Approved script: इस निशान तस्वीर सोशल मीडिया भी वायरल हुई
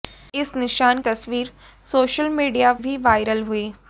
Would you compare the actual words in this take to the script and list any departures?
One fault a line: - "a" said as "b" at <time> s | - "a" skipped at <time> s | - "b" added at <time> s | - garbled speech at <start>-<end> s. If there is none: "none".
none